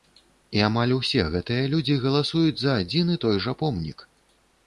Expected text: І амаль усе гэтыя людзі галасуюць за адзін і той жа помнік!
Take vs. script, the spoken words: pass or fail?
pass